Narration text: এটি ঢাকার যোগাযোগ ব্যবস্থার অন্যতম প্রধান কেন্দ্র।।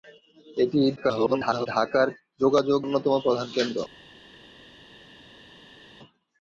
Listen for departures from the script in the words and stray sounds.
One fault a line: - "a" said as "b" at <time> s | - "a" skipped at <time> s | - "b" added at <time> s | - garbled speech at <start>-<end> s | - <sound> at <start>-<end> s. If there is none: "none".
- garbled speech at 1.0-1.7 s
- "ব্যবস্থার" skipped at 2.8 s